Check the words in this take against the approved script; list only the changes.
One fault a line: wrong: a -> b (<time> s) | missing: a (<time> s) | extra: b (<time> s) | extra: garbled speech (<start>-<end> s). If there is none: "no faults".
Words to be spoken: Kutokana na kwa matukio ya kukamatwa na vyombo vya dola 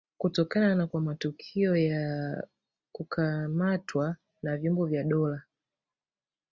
no faults